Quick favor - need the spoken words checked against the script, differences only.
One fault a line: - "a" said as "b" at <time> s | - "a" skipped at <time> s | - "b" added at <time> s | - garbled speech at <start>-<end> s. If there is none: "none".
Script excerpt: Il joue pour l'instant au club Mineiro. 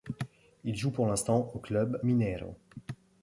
none